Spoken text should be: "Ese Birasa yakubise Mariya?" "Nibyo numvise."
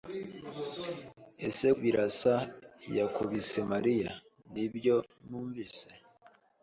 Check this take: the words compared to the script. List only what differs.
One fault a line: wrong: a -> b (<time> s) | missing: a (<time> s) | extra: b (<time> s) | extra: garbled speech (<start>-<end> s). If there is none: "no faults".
no faults